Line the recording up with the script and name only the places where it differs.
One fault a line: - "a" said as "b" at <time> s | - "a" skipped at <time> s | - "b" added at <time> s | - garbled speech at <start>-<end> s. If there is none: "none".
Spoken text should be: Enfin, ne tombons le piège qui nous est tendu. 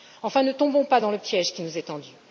- "pas dans" added at 0.8 s